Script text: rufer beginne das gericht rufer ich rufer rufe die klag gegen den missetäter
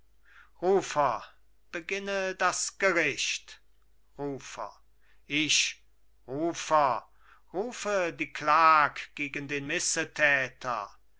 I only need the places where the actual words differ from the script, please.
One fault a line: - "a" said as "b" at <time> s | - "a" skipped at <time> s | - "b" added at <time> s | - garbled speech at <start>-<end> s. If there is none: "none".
none